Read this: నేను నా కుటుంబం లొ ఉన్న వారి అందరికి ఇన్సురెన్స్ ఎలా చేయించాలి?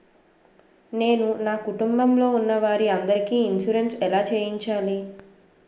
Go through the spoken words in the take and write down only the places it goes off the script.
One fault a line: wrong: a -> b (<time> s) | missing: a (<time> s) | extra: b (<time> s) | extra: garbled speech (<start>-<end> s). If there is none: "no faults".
no faults